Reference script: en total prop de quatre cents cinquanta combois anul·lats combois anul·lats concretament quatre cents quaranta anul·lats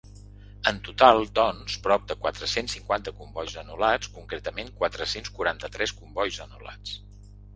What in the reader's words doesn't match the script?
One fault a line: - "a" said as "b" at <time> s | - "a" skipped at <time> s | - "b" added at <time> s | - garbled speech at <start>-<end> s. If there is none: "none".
- "doncs" added at 1.4 s
- "combois anul·lats" skipped at 4.1 s
- "tres combois" added at 5.8 s